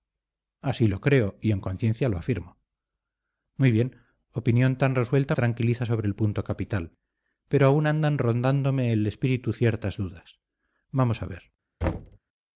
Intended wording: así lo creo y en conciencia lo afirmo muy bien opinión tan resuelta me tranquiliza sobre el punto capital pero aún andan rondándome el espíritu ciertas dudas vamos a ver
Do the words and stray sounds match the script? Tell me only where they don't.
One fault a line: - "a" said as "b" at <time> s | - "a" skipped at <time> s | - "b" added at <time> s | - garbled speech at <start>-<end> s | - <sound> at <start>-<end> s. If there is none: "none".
- "me" skipped at 5.3 s
- thud at 11.8-12.2 s